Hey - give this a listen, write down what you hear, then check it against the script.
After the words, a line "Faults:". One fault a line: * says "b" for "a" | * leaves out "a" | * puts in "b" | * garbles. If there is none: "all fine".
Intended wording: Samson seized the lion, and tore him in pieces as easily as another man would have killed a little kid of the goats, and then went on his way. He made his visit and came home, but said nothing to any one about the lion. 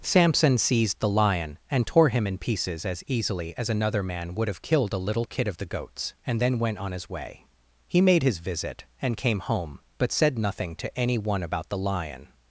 Samson seized the lion, and tore him in pieces as easily as another man would have killed a little kid of the goats, and then went on his way. He made his visit and came home, but said nothing to any one about the lion.
Faults:
all fine